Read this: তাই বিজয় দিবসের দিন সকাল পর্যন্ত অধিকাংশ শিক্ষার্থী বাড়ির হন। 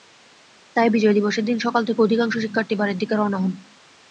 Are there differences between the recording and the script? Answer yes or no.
yes